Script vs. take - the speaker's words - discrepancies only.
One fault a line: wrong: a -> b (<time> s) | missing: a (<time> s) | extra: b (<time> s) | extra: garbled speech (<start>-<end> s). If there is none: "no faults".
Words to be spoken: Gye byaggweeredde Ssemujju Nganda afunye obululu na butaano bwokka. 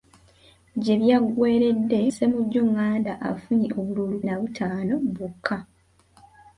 no faults